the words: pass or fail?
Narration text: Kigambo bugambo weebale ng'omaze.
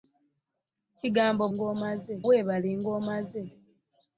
fail